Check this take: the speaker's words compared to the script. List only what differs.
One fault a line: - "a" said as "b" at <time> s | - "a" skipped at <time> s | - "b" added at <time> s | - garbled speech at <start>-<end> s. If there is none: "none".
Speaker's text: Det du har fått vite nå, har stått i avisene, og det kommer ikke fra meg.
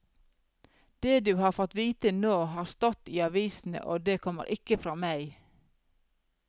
none